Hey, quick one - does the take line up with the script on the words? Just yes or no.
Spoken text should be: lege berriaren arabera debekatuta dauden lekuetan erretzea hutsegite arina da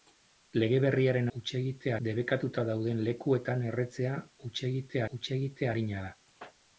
no